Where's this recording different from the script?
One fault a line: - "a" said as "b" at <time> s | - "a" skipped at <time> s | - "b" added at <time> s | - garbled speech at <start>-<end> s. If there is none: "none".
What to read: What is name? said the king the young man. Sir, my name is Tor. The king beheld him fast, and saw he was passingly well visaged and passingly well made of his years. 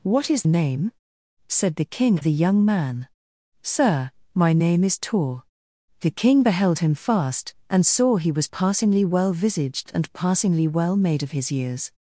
none